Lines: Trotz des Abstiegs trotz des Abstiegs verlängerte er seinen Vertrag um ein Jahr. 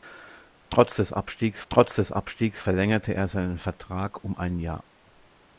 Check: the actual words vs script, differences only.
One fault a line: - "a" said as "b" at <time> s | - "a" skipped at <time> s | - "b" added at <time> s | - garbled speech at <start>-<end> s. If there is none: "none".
none